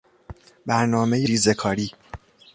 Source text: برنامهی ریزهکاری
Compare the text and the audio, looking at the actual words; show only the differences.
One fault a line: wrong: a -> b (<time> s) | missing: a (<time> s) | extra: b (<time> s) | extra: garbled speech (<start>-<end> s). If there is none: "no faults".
no faults